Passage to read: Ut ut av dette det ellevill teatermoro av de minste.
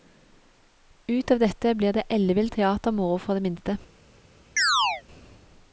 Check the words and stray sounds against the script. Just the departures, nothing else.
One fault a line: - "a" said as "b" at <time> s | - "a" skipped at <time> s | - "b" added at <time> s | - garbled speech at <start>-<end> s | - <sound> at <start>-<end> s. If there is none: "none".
- "ut" skipped at 1.3 s
- "blir" added at 1.8 s
- "av" said as "for" at 3.2 s
- chirp at 4.6-5.0 s